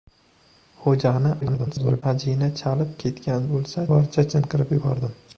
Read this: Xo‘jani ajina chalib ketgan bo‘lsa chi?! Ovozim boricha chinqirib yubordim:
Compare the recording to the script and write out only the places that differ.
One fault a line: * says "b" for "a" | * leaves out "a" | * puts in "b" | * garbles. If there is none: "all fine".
* garbles
* leaves out "chi Ovozim"